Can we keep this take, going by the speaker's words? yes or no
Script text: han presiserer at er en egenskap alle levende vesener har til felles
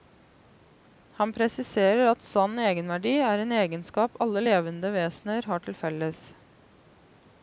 no